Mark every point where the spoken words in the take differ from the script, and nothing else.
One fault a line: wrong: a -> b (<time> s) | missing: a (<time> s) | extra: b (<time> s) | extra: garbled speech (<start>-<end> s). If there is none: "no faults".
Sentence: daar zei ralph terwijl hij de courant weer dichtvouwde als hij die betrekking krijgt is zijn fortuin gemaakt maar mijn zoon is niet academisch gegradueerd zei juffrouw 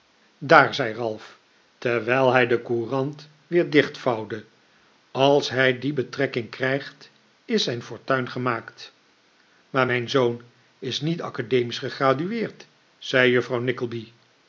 no faults